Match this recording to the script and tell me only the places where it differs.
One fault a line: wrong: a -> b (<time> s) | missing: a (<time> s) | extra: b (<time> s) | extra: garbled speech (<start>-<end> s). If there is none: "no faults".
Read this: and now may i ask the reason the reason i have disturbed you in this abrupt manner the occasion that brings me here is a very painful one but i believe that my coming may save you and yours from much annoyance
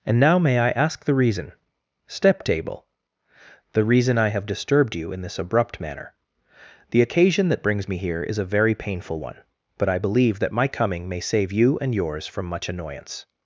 extra: step table (2.1 s)